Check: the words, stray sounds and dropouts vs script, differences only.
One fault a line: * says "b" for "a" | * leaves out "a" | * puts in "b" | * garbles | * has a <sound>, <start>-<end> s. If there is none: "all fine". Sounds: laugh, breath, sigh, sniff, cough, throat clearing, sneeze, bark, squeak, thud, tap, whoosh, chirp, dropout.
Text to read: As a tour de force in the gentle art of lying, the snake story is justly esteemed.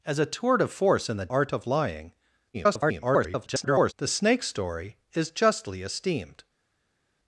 * leaves out "gentle"
* garbles